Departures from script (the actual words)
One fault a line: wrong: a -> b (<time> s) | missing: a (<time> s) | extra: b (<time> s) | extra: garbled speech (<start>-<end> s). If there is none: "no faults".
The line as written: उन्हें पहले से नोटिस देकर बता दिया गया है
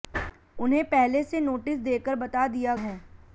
missing: गया (2.8 s)